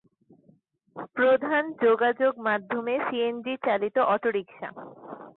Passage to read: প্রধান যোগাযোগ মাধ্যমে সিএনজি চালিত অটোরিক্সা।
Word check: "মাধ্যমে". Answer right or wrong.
right